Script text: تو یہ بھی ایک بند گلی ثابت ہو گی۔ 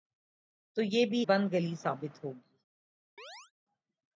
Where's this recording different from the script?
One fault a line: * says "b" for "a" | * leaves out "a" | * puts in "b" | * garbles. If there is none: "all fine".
* leaves out "ایک"